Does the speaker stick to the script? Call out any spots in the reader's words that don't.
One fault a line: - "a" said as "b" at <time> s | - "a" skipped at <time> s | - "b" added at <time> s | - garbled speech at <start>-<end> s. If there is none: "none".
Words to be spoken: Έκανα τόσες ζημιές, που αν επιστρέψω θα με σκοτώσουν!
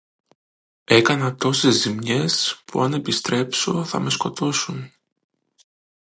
none